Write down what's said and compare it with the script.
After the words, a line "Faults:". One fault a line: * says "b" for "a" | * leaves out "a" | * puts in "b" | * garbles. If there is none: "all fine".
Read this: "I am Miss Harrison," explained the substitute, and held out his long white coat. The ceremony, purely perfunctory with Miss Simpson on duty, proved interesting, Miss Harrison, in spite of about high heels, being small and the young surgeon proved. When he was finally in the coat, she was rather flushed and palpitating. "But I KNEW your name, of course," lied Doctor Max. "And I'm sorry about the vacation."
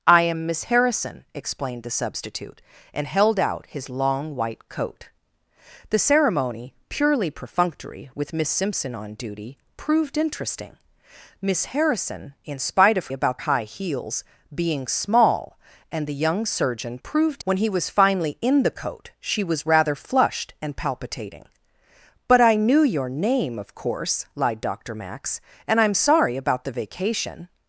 "I am Miss Harrison," explained the substitute, and held out his long white coat. The ceremony, purely perfunctory with Miss Simpson on duty, proved interesting, Miss Harrison, in spite of about high heels, being small and the young surgeon proved. When he was finally in the coat, she was rather flushed and palpitating. "But I KNEW your name, of course," lied Doctor Max. "And I'm sorry about the vacation."
Faults:
all fine